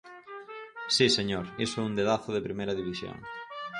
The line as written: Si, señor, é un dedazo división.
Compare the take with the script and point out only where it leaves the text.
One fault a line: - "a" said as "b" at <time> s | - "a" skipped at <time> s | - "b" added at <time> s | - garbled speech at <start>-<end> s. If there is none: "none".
- "iso" added at 1.6 s
- "de primeira" added at 2.3 s